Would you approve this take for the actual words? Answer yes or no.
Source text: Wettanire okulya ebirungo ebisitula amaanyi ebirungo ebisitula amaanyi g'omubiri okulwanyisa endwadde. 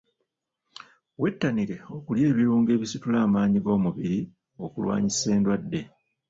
no